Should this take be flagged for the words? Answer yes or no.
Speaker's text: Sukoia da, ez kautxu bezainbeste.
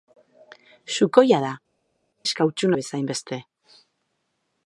no